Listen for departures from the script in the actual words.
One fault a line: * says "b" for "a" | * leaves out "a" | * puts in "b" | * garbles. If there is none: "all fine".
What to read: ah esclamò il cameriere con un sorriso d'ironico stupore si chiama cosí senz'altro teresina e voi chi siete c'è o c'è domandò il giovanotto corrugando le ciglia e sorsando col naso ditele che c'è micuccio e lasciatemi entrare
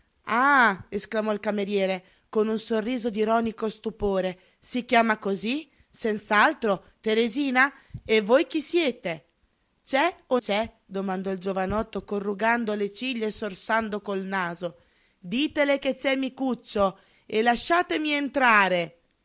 all fine